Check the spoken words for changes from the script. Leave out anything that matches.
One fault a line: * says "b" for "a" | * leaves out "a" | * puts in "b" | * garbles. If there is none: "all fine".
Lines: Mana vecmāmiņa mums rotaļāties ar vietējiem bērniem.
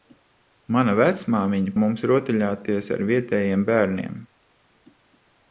all fine